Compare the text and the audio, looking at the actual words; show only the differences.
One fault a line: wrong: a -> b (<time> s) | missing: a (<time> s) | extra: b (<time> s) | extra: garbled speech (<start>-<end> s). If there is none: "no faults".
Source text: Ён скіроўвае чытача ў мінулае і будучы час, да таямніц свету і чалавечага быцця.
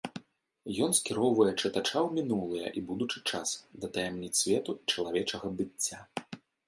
no faults